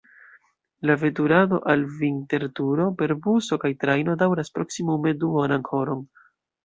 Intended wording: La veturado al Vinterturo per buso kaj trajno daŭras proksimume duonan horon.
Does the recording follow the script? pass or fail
pass